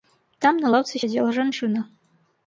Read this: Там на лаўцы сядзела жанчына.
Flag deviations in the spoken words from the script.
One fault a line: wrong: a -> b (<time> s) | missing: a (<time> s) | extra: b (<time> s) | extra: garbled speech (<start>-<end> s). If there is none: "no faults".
no faults